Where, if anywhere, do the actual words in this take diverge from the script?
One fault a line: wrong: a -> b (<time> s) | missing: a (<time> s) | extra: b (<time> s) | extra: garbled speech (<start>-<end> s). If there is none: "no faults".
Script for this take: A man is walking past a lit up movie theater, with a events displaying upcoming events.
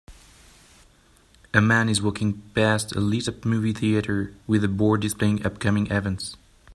wrong: events -> board (4.7 s)